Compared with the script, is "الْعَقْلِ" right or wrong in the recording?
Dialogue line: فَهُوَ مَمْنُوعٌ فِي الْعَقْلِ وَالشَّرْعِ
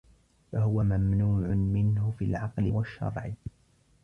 right